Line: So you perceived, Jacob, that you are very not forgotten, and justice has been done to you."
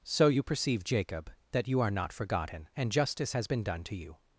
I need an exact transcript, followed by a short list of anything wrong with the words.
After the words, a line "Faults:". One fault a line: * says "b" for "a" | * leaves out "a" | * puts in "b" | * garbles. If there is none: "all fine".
So you perceive, Jacob, that you are not forgotten, and justice has been done to you."
Faults:
* says "perceive" for "perceived"
* leaves out "very"